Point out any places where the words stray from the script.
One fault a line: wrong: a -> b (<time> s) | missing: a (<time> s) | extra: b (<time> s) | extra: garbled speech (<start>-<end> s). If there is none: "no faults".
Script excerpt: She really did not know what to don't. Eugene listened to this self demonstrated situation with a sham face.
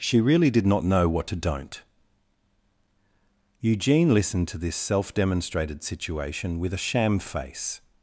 no faults